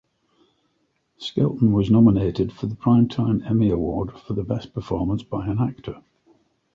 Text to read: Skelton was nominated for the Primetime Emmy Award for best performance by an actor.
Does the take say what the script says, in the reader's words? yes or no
yes